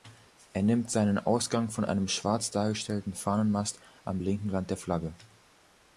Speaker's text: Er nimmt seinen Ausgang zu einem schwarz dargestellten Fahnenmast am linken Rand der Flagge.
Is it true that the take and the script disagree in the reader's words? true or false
true